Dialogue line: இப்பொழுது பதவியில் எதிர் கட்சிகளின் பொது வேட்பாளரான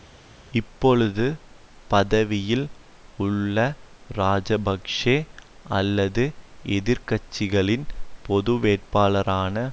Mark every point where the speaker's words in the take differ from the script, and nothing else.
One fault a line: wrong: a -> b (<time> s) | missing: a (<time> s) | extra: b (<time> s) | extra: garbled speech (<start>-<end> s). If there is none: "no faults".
extra: உள்ள இராஜபக்ஷ அல்லது (3.2 s)